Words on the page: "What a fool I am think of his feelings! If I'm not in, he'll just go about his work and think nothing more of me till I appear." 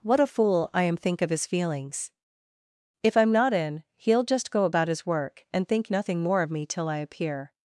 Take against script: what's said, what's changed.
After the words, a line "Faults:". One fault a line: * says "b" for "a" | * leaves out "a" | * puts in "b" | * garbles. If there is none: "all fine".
"What a fool I am think of his feelings! If I'm not in, he'll just go about his work and think nothing more of me till I appear."
Faults:
all fine